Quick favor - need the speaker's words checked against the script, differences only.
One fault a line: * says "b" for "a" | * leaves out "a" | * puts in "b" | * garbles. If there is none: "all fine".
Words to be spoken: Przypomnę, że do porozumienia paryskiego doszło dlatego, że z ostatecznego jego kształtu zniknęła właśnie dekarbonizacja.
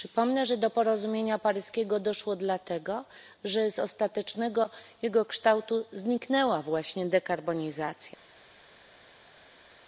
all fine